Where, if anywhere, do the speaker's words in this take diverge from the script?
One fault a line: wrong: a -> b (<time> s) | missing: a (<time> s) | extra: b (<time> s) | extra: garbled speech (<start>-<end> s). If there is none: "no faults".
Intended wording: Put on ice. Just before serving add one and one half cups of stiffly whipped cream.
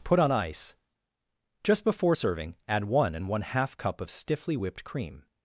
wrong: cups -> cup (3.8 s)